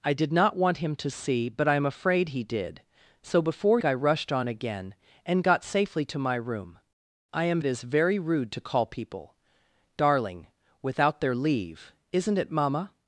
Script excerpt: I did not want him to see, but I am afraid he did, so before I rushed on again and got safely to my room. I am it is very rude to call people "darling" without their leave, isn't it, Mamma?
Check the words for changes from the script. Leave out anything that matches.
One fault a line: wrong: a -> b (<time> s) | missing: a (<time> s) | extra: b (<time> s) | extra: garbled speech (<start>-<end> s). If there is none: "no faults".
no faults